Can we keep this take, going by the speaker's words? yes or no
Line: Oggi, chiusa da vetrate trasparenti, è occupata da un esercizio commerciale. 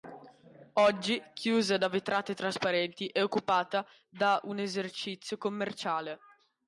yes